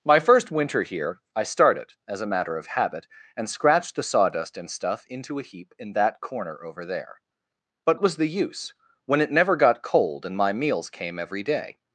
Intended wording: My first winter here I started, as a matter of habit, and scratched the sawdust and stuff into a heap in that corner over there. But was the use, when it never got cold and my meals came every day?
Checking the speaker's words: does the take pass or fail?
pass